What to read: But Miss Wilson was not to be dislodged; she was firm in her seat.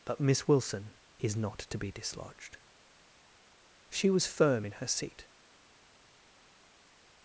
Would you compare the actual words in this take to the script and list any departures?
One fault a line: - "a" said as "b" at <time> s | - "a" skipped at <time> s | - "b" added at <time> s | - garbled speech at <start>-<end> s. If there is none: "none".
- "was" said as "is" at 1.2 s